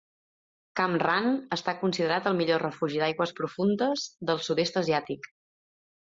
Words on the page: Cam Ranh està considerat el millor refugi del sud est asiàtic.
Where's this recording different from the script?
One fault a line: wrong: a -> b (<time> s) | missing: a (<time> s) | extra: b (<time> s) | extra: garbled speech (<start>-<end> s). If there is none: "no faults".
extra: d'aigües profundes (3.0 s)